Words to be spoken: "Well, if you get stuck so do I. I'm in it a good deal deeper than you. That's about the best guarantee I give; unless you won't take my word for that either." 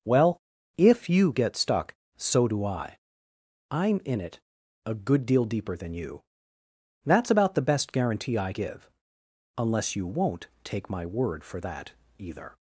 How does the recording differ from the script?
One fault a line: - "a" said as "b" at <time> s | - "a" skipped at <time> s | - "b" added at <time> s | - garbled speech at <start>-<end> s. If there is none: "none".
none